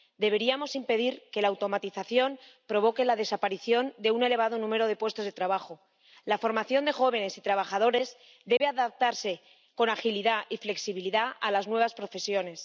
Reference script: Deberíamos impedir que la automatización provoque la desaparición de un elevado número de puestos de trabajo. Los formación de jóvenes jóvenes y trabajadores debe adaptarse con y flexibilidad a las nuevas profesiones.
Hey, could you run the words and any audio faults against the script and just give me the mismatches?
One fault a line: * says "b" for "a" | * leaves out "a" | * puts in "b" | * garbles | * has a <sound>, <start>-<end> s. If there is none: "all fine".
* says "La" for "Los"
* leaves out "jóvenes"
* has a dropout, 8.6-8.6 s
* puts in "agilidad"